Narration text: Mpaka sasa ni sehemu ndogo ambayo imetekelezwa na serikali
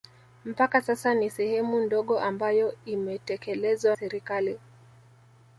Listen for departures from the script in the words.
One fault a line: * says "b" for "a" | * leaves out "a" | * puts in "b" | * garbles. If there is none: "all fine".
* leaves out "na"